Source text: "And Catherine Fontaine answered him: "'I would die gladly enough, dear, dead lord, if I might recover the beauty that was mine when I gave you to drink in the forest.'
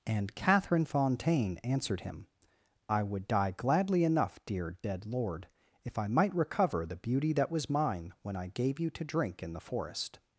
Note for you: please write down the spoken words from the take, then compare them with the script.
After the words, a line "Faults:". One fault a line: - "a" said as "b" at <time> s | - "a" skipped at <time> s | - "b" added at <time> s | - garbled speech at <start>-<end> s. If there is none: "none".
"And Catherine Fontaine answered him: "'I would die gladly enough, dear, dead lord, if I might recover the beauty that was mine when I gave you to drink in the forest.'
Faults:
none